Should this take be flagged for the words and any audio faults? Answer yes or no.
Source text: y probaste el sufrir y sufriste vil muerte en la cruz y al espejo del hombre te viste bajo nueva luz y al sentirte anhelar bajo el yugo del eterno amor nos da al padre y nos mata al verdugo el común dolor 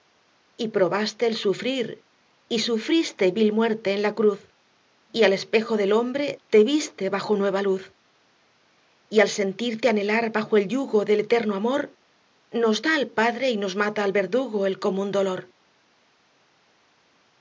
no